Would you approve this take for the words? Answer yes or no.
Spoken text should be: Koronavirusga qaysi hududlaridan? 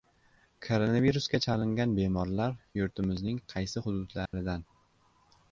no